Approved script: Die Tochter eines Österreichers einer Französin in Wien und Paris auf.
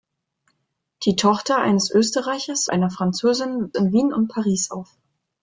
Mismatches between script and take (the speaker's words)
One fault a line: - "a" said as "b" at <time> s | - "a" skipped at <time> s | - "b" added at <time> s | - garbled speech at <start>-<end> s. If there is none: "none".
none